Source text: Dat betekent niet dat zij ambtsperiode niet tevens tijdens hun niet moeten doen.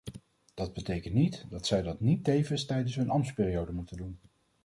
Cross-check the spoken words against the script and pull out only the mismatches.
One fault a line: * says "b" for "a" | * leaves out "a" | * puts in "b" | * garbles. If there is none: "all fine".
* says "dat" for "ambtsperiode"
* says "ambtsperiode" for "niet"